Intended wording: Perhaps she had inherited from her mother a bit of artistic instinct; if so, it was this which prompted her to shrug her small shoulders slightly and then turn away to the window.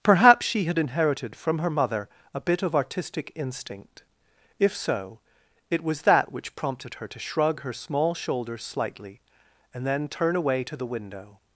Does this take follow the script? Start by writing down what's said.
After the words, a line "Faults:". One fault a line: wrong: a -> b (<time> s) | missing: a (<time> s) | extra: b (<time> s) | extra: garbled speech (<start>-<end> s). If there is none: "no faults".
Perhaps she had inherited from her mother a bit of artistic instinct; if so, it was that which prompted her to shrug her small shoulders slightly and then turn away to the window.
Faults:
wrong: this -> that (6.0 s)